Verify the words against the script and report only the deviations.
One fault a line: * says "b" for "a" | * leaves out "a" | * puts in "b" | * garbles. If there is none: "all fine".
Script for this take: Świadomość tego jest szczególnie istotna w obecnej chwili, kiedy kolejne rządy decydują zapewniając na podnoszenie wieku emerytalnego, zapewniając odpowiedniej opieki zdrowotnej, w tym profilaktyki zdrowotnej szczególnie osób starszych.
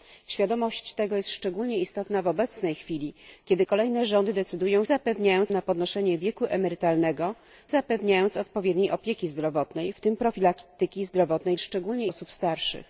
all fine